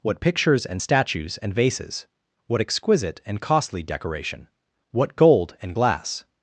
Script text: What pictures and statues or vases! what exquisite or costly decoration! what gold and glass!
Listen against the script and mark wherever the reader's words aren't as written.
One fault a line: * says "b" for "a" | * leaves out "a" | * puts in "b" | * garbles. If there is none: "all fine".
* says "and" for "or"
* says "and" for "or"